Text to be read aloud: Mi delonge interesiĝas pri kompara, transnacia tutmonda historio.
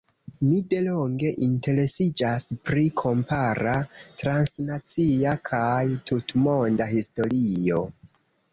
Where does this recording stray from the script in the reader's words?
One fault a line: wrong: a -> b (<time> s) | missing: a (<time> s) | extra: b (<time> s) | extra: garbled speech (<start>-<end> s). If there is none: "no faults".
extra: kaj (5.5 s)